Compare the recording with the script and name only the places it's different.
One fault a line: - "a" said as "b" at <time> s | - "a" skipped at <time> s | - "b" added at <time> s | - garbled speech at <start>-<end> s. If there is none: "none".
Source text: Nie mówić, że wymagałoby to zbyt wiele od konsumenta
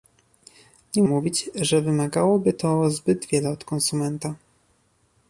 none